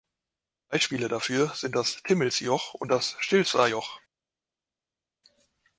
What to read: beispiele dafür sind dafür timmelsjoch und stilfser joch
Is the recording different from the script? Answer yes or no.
yes